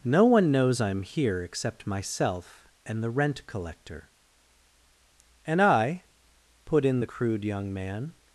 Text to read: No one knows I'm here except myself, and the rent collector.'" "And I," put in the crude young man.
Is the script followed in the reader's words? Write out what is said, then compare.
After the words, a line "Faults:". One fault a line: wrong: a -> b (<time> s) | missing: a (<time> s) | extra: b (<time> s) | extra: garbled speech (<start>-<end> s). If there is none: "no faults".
No one knows I'm here except myself, and the rent collector.'" "And I," put in the crude young man.
Faults:
no faults